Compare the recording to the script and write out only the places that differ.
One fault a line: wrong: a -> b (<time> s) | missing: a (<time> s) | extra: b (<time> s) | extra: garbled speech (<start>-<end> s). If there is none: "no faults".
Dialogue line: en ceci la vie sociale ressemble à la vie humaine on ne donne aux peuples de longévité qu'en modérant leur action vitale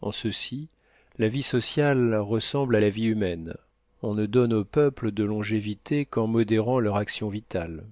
no faults